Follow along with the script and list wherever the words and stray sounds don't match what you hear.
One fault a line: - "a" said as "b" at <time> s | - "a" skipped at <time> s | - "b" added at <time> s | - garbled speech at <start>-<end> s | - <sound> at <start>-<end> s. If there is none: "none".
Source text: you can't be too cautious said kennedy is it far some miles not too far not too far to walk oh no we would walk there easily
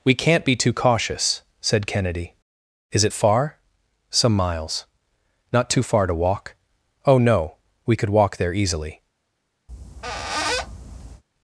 - "you" said as "we" at 0.0 s
- "not too far" skipped at 6.1 s
- "would" said as "could" at 8.0 s
- squeak at 9.7-11.2 s